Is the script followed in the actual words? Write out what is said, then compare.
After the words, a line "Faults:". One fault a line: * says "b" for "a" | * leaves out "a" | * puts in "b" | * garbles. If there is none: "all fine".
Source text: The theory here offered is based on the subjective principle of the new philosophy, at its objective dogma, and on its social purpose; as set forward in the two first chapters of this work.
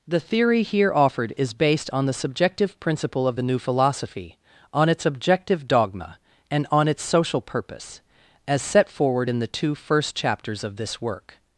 The theory here offered is based on the subjective principle of the new philosophy, on its objective dogma, and on its social purpose; as set forward in the two first chapters of this work.
Faults:
* says "on" for "at"